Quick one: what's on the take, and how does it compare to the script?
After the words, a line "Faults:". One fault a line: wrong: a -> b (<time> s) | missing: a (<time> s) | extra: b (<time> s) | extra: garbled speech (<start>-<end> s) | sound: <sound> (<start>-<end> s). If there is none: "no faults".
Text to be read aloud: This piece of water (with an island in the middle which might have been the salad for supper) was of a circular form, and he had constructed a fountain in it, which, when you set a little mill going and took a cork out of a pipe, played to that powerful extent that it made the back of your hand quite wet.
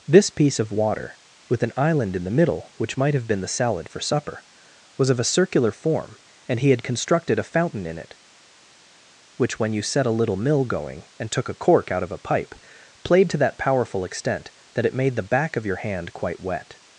This piece of water (with an island in the middle which might have been the salad for supper) was of a circular form, and he had constructed a fountain in it, which, when you set a little mill going and took a cork out of a pipe, played to that powerful extent that it made the back of your hand quite wet.
Faults:
no faults